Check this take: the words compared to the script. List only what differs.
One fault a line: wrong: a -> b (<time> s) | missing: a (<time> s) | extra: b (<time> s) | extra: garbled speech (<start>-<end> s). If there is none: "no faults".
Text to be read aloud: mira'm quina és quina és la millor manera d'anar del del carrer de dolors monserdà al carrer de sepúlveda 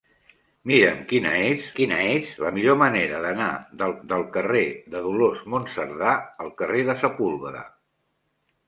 no faults